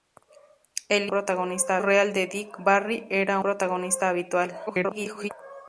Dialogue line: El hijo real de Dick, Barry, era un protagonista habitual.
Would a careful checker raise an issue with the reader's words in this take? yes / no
yes